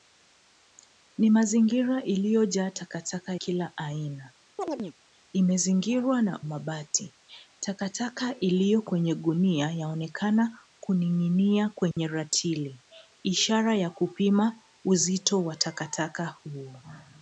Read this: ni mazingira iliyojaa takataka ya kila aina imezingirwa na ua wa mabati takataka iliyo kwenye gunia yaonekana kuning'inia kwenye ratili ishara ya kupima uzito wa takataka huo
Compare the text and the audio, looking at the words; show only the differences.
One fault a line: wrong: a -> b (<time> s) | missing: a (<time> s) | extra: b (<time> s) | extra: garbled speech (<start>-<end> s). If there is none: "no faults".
missing: ya (3.4 s)
missing: ua wa (6.4 s)